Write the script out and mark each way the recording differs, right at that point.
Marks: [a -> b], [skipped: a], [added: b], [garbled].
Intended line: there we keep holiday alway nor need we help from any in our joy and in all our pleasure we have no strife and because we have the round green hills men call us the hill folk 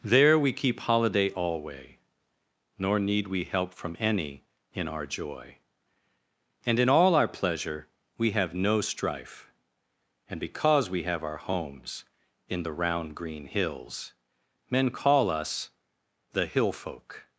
there we keep holiday alway nor need we help from any in our joy and in all our pleasure we have no strife and because we have [added: our homes in] the round green hills men call us the hill folk